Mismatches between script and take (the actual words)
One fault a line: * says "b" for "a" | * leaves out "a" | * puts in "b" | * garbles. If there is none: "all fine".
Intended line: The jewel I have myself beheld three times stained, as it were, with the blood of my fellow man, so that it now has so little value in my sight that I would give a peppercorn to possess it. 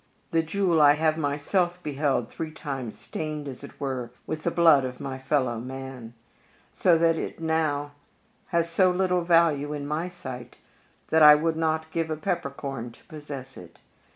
* puts in "not"